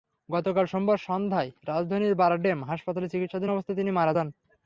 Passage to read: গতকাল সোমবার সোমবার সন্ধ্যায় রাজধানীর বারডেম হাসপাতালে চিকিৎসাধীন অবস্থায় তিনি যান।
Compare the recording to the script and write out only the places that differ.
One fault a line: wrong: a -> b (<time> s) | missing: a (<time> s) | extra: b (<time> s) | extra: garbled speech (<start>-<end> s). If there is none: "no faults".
missing: সোমবার (1.0 s)
extra: মারা (3.9 s)